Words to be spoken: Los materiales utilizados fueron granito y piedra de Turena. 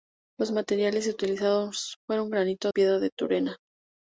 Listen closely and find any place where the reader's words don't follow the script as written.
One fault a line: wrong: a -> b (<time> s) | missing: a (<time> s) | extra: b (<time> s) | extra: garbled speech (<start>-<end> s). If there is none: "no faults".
no faults